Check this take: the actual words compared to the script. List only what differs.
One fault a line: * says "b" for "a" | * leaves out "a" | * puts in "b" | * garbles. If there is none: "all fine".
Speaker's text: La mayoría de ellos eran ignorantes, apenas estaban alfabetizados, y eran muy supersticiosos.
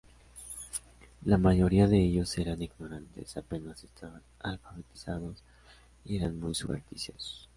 all fine